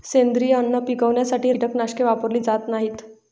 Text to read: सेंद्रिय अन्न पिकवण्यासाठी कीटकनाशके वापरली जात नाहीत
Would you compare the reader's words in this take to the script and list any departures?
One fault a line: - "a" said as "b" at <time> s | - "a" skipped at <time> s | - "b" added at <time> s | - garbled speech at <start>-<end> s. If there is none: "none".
none